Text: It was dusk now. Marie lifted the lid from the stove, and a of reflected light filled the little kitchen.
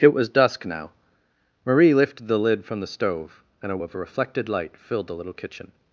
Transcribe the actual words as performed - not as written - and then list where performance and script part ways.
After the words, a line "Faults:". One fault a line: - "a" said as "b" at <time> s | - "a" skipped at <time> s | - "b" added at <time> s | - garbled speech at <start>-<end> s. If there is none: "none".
It was dusk now. Marie lifted the lid from the stove, and a of reflected light filled the little kitchen.
Faults:
none